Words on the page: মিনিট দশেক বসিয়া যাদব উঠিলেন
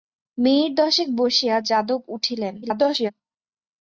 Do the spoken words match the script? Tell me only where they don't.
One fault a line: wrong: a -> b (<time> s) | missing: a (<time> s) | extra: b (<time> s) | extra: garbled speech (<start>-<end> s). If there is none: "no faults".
extra: garbled speech (2.6-3.1 s)